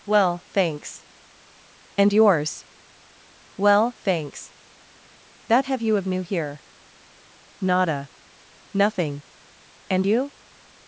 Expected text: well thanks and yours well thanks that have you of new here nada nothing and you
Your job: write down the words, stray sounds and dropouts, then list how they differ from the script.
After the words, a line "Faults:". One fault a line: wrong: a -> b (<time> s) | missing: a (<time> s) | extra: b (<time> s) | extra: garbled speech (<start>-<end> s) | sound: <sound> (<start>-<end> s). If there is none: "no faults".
well thanks and yours well thanks that have you of new here nada nothing and you
Faults:
no faults